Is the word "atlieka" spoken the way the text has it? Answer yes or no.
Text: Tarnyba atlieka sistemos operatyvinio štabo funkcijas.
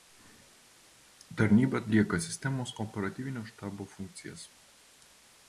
yes